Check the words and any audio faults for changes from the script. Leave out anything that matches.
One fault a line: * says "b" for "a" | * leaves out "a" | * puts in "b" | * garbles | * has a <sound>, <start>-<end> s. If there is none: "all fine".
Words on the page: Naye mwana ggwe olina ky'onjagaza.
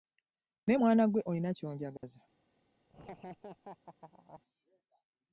* has a dropout, 2.0-2.0 s
* has a laugh, 2.9-4.4 s